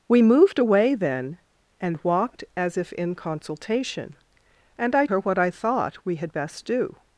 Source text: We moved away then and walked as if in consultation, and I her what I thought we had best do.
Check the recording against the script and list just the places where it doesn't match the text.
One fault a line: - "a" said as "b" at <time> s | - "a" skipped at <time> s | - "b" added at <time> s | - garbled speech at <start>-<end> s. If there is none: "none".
none